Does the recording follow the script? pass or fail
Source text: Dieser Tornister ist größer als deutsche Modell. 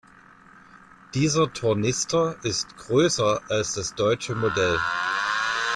fail